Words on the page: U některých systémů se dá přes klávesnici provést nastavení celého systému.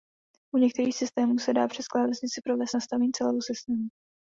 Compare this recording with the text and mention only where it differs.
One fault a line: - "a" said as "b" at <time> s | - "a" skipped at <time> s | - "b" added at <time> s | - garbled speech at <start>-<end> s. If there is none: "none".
none